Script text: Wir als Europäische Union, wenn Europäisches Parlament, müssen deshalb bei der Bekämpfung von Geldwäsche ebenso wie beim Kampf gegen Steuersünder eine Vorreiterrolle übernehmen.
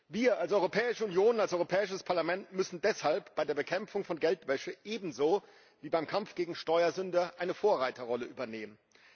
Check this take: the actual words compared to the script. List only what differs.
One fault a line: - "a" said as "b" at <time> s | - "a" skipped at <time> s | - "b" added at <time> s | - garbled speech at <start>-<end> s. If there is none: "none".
- "wenn" said as "als" at 1.4 s